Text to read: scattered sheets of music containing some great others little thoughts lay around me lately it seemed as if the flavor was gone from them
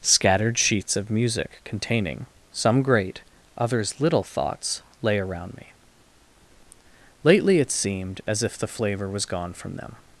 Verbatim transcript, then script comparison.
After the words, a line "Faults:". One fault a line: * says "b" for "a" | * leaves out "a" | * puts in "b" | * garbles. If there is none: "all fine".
scattered sheets of music containing some great others little thoughts lay around me lately it seemed as if the flavor was gone from them
Faults:
all fine